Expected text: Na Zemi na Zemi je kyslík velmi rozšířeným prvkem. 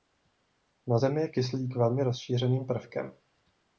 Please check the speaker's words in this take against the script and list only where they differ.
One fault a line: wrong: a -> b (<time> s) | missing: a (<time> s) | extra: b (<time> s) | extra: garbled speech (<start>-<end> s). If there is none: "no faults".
missing: na Zemi (1.2 s)